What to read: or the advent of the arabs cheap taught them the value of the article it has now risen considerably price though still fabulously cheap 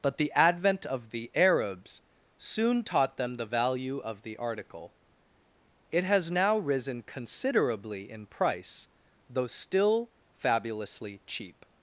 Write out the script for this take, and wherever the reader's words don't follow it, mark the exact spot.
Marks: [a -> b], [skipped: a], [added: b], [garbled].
[or -> but] the advent of the arabs [cheap -> soon] taught them the value of the article it has now risen considerably [added: in] price though still fabulously cheap